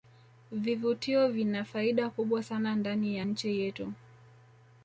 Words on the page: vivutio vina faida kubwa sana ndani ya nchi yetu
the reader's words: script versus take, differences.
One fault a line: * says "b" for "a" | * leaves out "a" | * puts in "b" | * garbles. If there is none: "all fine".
all fine